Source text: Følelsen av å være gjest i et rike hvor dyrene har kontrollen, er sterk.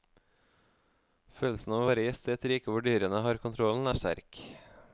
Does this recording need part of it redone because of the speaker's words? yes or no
no